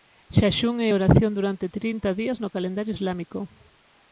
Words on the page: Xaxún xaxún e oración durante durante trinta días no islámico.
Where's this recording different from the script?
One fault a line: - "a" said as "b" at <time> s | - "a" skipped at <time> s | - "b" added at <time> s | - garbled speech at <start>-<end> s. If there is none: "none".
- "xaxún" skipped at 0.8 s
- "durante" skipped at 1.7 s
- "calendario" added at 2.5 s